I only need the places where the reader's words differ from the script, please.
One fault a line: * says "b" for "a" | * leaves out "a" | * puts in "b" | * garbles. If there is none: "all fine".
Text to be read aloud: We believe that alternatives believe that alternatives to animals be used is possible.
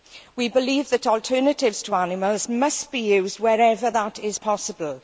* leaves out "believe that alternatives"
* puts in "must"
* puts in "wherever that"